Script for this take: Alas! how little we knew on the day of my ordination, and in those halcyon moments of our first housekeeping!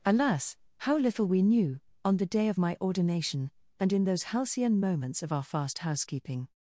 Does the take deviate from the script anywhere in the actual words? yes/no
yes